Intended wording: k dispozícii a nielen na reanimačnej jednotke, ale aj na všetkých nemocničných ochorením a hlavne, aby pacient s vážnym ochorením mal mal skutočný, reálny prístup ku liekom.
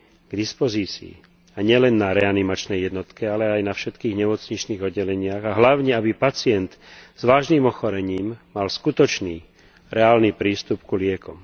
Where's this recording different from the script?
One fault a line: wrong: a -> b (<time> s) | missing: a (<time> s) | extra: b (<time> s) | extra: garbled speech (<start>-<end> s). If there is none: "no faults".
wrong: ochorením -> oddeleniach (4.8 s)
missing: mal (8.7 s)